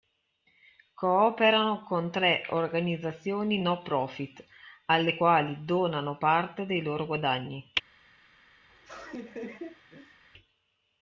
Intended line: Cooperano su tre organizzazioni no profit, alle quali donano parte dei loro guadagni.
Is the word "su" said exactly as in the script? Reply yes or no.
no